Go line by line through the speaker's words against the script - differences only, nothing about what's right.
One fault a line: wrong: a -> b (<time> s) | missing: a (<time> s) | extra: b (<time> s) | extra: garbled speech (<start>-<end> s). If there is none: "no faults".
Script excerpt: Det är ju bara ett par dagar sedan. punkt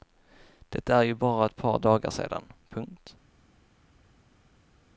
no faults